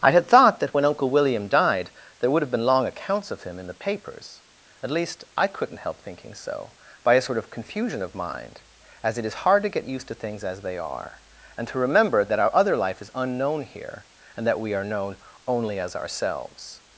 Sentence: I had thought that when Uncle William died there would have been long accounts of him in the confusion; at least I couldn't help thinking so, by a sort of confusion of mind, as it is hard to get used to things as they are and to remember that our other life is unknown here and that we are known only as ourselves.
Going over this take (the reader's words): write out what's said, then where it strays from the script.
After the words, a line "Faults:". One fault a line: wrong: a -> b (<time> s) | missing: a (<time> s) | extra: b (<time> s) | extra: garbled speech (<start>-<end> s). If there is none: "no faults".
I had thought that when Uncle William died there would have been long accounts of him in the papers; at least I couldn't help thinking so, by a sort of confusion of mind, as it is hard to get used to things as they are and to remember that our other life is unknown here and that we are known only as ourselves.
Faults:
wrong: confusion -> papers (3.8 s)